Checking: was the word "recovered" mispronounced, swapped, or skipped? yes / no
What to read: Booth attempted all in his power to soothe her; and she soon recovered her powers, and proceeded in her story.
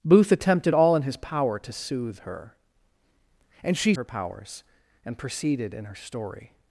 yes